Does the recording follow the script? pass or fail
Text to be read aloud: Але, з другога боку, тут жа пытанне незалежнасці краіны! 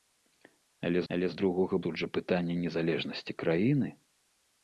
fail